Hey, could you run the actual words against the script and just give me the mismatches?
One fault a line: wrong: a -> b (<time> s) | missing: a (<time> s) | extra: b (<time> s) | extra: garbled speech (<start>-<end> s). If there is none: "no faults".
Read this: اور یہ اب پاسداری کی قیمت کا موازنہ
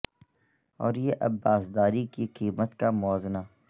no faults